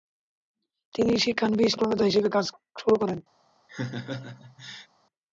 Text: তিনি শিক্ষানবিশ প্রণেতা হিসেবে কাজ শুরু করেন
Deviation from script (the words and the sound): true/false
true